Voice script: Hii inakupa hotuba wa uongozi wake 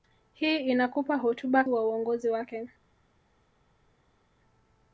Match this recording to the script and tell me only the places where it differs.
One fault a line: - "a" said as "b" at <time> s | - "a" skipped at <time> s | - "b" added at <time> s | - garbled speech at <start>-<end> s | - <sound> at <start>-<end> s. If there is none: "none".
none